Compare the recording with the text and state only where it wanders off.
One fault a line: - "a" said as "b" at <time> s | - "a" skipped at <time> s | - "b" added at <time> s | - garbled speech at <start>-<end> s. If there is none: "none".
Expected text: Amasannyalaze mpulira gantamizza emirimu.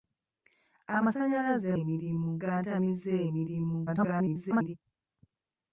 - "mpulira" said as "emirimu" at 1.8 s
- garbled speech at 3.9-4.7 s